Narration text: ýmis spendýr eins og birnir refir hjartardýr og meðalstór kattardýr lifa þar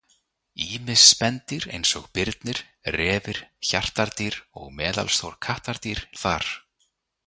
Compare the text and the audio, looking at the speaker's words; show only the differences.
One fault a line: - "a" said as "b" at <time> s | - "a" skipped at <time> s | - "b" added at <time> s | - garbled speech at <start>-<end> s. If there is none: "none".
- "lifa" skipped at 6.0 s